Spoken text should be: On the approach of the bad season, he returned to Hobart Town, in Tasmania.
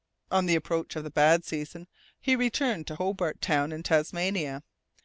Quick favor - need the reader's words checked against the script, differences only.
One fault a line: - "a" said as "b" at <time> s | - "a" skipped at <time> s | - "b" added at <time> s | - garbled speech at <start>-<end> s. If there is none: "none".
none